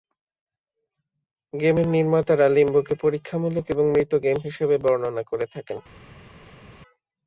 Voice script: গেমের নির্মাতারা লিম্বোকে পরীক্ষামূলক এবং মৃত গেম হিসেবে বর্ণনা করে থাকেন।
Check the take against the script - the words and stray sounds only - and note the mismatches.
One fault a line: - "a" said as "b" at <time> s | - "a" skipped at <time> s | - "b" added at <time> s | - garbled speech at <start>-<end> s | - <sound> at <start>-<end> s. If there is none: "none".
none